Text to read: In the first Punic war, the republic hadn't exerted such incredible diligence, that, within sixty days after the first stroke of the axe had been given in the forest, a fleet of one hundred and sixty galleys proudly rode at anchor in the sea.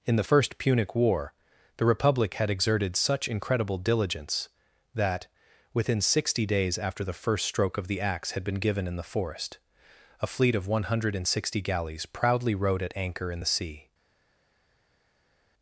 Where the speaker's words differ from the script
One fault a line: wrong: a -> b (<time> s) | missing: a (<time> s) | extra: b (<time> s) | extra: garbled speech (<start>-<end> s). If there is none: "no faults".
wrong: hadn't -> had (2.3 s)